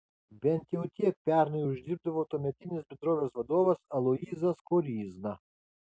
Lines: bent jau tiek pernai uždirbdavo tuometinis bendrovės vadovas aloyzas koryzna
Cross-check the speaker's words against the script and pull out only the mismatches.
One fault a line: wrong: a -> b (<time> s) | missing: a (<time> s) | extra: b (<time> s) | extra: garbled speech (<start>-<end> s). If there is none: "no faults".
no faults